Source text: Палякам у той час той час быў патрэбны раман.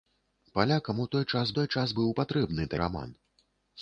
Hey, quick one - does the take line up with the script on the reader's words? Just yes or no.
yes